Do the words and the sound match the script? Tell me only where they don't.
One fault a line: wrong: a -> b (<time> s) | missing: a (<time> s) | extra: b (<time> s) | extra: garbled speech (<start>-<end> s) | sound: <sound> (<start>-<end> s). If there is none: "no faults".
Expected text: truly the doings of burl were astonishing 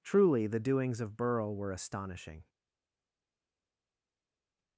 no faults